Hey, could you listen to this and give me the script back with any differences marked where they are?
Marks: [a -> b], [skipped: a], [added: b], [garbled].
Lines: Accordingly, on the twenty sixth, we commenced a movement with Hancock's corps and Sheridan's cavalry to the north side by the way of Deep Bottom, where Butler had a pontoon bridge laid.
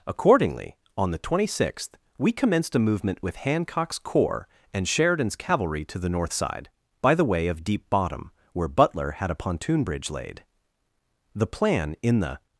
Accordingly, on the twenty sixth, we commenced a movement with Hancock's corps and Sheridan's cavalry to the north side by the way of Deep Bottom, where Butler had a pontoon bridge laid. [added: The plan in the]